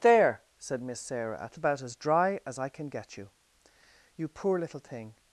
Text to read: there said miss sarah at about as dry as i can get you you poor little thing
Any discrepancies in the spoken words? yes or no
no